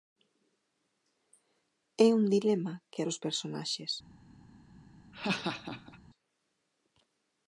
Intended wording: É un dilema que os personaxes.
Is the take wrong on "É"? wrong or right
right